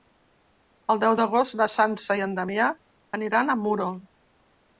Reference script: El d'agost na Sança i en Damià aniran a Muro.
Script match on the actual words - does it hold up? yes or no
no